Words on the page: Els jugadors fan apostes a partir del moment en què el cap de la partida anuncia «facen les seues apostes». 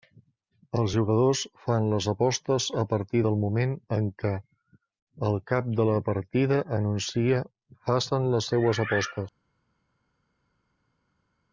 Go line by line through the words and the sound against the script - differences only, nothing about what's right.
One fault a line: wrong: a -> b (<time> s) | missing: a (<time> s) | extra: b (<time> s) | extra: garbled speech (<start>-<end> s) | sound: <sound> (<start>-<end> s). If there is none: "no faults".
extra: les (1.9 s)